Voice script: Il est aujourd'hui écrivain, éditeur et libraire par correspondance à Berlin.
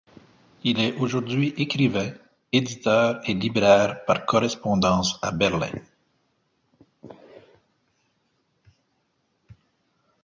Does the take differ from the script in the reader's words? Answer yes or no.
no